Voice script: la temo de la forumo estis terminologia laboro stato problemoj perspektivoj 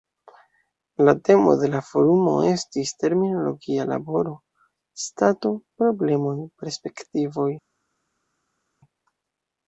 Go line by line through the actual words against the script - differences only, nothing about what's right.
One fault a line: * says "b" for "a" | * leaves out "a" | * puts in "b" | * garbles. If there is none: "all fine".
all fine